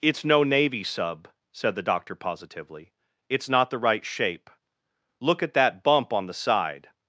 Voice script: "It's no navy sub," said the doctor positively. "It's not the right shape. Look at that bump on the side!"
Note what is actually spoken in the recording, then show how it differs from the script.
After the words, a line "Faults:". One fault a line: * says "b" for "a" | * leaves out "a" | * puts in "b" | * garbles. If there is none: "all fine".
"It's no navy sub," said the doctor positively. "It's not the right shape. Look at that bump on the side!"
Faults:
all fine